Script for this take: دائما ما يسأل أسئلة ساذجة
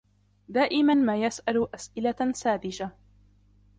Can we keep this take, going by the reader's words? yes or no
yes